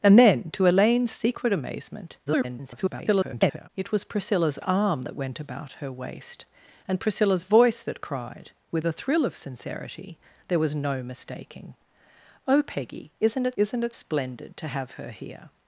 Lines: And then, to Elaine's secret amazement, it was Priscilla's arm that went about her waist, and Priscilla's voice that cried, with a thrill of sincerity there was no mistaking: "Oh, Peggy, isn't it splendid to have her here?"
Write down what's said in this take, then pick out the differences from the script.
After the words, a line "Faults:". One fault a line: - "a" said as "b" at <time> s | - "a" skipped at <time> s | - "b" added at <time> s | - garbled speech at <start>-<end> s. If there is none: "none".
And then, to Elaine's secret amazement, [garbled] it was Priscilla's arm that went about her waist, and Priscilla's voice that cried, with a thrill of sincerity there was no mistaking: "Oh, Peggy, isn't it isn't it splendid to have her here?"
Faults:
- garbled speech at 2.3-3.7 s
- "isn't it" added at 13.6 s